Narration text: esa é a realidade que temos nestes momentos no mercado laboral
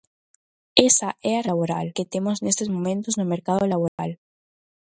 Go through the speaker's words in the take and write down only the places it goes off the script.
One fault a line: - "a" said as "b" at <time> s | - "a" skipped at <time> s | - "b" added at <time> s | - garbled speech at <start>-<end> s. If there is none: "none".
- "realidade" said as "laboral" at 1.5 s